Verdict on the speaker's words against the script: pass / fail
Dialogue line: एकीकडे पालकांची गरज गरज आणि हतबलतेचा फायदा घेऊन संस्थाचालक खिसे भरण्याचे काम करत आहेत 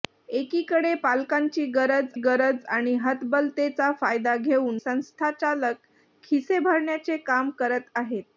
pass